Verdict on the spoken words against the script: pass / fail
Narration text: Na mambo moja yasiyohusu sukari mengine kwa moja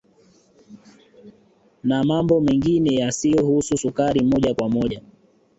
fail